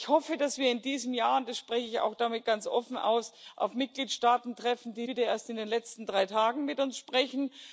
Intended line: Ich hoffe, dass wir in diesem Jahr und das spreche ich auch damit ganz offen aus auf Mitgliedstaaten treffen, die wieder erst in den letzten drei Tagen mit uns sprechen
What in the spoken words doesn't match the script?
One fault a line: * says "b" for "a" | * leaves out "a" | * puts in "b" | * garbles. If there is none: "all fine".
all fine